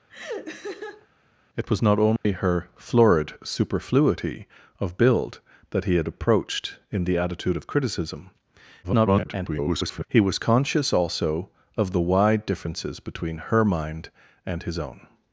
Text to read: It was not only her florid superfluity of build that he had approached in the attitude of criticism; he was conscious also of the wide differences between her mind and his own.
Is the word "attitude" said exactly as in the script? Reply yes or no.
yes